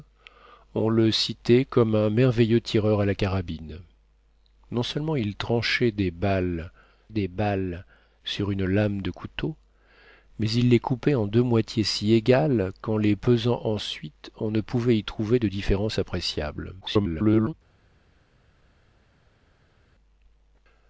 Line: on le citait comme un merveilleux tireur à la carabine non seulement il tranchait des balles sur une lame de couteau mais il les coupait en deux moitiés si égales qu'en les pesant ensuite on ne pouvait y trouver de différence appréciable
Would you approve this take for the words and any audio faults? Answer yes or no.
no